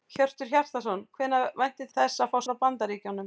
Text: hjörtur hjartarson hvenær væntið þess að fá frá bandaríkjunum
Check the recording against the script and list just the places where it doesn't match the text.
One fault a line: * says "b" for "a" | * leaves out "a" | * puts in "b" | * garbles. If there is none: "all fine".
all fine